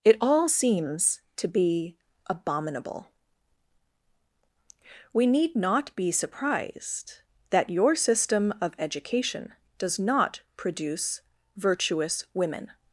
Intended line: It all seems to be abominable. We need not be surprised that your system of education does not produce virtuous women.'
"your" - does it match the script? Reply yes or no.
yes